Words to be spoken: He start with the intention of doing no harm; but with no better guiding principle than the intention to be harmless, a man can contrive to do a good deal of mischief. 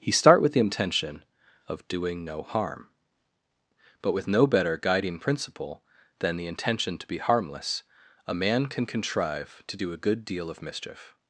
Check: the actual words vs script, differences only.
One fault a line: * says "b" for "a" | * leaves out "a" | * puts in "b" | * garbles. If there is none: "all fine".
all fine